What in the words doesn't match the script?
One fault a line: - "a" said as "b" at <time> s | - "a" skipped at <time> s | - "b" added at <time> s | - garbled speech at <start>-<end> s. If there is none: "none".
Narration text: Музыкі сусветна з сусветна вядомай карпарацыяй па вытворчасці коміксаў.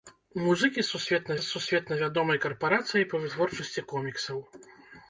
none